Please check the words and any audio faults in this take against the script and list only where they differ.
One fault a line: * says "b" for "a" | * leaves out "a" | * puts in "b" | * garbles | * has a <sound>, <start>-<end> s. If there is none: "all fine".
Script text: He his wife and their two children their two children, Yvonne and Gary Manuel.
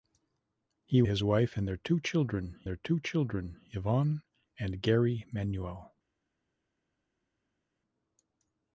all fine